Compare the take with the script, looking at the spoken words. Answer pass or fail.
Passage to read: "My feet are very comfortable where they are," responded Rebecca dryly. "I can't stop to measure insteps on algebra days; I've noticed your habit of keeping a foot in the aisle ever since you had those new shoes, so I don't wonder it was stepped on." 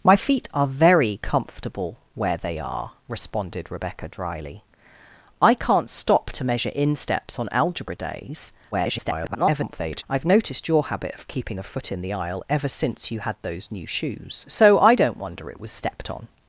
fail